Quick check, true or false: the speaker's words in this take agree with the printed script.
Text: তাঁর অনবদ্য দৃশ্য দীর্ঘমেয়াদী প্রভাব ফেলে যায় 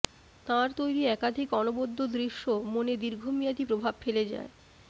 false